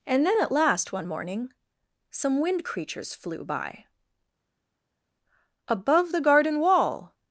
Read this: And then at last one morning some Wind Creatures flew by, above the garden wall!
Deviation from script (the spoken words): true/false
false